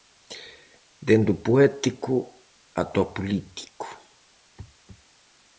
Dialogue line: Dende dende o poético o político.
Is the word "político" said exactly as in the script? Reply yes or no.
yes